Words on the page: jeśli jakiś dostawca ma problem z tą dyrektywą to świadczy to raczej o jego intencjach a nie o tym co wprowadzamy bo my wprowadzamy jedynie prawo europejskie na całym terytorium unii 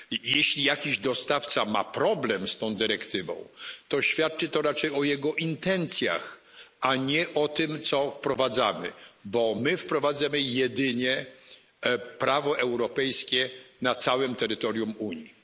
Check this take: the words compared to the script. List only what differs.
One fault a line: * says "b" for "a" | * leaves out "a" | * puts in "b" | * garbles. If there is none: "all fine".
all fine